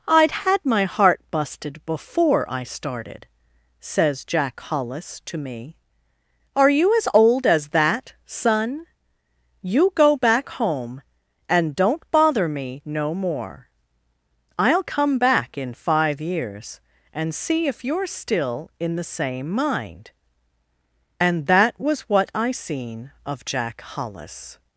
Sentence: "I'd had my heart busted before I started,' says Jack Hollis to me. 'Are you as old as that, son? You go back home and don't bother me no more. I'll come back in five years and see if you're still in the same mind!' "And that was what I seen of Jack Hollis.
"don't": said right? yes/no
yes